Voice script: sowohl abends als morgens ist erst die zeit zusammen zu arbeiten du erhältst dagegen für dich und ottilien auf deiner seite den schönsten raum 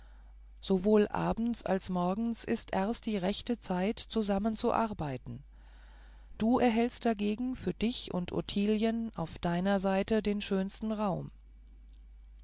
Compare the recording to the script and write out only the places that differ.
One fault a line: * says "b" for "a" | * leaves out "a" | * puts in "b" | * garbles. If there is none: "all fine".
* puts in "rechte"